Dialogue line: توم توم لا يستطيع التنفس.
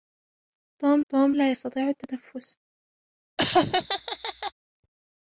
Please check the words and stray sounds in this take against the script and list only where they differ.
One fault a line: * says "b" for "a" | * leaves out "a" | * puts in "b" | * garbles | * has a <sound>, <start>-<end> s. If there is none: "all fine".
* has a laugh, 3.4-4.5 s